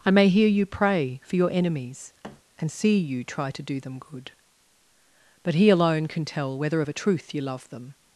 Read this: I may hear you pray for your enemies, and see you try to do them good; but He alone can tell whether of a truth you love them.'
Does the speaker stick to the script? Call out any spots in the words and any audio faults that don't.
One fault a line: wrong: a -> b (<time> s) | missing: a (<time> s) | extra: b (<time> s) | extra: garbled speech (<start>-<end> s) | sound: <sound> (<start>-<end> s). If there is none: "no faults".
sound: thud (2.2-2.4 s)